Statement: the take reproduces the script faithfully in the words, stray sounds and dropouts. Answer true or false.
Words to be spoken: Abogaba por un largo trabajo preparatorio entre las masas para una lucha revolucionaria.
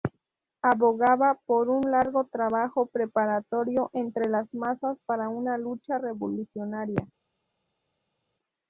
true